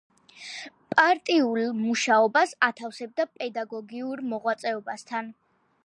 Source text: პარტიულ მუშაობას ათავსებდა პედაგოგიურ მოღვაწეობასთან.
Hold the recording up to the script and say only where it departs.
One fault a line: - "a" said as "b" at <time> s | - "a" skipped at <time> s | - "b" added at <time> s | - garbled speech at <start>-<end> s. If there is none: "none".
none